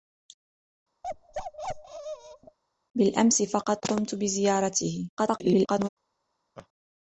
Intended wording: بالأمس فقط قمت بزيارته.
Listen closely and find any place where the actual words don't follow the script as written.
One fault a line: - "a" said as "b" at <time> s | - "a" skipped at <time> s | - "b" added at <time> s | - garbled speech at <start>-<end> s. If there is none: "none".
- garbled speech at 5.2-5.9 s